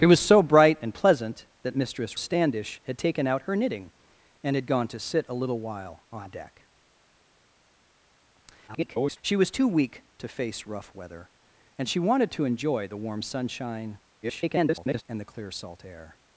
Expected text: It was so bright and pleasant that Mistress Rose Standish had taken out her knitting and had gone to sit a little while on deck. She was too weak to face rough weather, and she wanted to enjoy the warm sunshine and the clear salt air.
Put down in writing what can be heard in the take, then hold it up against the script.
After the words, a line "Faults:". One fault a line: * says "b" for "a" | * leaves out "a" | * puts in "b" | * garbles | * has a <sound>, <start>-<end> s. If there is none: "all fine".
It was so bright and pleasant that Mistress Standish had taken out her knitting and had gone to sit a little while on deck. [garbled] She was too weak to face rough weather, and she wanted to enjoy the warm sunshine [garbled] and the clear salt air.
Faults:
* leaves out "Rose"
* garbles
* garbles